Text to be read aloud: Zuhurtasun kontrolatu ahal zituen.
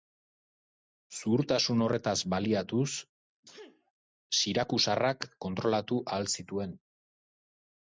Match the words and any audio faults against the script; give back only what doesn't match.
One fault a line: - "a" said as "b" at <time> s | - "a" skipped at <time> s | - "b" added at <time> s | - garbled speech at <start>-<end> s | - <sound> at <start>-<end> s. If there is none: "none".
- "horretaz baliatuz sirakusarrak" added at 1.9 s
- sneeze at 3.4-3.9 s